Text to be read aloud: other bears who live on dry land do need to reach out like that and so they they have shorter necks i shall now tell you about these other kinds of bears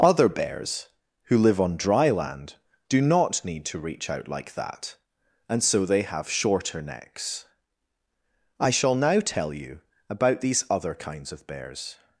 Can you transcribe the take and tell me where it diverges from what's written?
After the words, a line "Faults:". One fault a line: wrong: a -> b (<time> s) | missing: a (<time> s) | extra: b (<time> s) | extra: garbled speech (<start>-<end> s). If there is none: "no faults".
other bears who live on dry land do not need to reach out like that and so they have shorter necks i shall now tell you about these other kinds of bears
Faults:
extra: not (3.0 s)
missing: they (6.0 s)